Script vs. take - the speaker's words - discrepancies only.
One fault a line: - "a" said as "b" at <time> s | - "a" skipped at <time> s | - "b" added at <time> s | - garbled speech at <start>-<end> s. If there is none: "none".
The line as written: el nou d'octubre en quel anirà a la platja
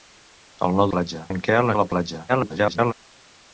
- "d'octubre" said as "platja" at 1.0 s
- "anirà" skipped at 1.7 s
- garbled speech at 2.3-2.9 s